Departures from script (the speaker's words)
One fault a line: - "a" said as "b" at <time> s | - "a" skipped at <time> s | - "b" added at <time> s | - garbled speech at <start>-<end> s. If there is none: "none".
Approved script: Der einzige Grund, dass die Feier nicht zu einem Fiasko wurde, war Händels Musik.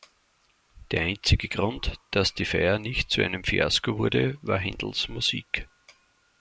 none